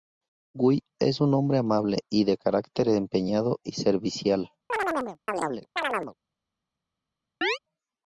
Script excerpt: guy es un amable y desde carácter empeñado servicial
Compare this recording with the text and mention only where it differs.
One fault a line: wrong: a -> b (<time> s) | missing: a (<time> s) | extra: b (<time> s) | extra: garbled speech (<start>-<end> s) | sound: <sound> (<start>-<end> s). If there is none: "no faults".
extra: hombre (1.4 s)
wrong: desde -> de (2.2 s)
extra: y (3.6 s)
sound: chirp (4.7-6.1 s)
sound: chirp (7.4-7.6 s)